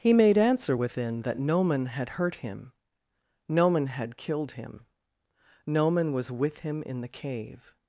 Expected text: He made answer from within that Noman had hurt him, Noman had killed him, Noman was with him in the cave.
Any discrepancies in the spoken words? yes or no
yes